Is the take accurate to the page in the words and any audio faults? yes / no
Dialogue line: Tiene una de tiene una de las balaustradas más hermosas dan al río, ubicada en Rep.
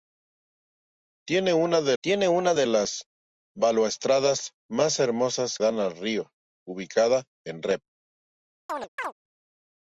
no